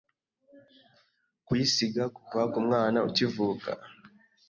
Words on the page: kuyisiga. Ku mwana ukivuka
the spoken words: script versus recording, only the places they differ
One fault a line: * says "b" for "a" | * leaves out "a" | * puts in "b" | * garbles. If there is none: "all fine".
* puts in "Kuva"